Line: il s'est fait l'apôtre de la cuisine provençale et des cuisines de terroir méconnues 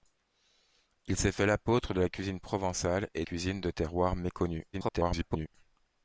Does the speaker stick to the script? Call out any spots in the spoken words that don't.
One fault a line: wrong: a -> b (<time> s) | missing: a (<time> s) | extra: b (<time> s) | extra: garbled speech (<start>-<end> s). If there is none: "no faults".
missing: des (3.2 s)
extra: garbled speech (4.7-5.5 s)